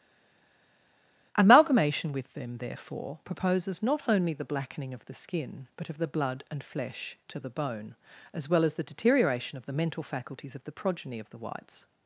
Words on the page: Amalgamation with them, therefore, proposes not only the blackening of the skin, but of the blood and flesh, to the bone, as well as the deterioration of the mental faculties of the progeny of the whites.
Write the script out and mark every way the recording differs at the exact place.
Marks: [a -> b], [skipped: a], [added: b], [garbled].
Amalgamation with them, therefore, proposes not only the blackening of the skin, but of the blood and flesh, to the bone, as well as the deterioration of the mental faculties of the progeny of the whites.